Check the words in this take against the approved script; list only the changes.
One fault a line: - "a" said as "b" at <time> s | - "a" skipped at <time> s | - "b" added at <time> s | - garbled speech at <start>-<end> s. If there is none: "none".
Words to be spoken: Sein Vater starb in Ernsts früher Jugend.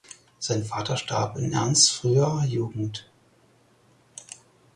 none